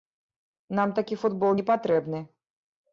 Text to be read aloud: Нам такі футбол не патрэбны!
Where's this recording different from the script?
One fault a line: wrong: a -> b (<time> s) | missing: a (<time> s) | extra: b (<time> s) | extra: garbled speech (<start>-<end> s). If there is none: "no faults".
no faults